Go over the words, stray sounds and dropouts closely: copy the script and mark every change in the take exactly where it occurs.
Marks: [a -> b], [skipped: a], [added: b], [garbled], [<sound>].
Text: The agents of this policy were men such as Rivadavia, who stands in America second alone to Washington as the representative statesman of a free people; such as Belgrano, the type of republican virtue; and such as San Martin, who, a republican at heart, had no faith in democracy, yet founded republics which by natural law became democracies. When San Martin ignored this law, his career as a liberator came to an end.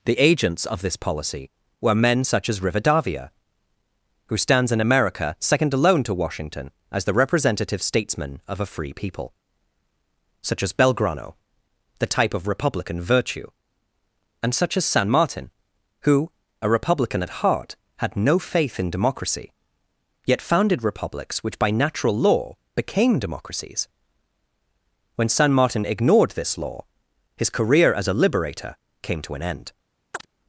The agents of this policy were men such as Rivadavia, who stands in America second alone to Washington as the representative statesman of a free people; such as Belgrano, the type of republican virtue; and such as San Martin, who, a republican at heart, had no faith in democracy, yet founded republics which by natural law became democracies. When San Martin ignored this law, his career as a liberator came to an end. [chirp]